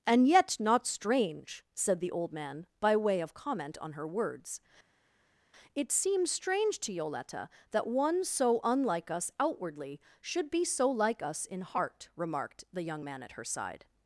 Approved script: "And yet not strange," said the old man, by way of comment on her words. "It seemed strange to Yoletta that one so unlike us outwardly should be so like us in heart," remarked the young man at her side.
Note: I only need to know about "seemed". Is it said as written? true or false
false